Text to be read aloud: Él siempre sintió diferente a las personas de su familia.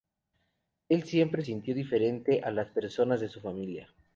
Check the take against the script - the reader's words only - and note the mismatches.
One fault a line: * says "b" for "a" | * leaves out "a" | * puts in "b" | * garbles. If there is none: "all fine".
all fine